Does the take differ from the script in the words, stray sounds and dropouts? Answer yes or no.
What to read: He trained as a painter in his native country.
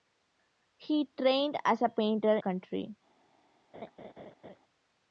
yes